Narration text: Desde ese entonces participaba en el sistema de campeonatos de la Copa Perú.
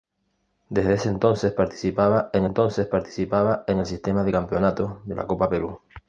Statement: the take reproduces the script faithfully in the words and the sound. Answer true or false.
false